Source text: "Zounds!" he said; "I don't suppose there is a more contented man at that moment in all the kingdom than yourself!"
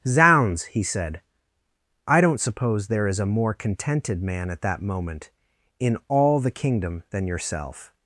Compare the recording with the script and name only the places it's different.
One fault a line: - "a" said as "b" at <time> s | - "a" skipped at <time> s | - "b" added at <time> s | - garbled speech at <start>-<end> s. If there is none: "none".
none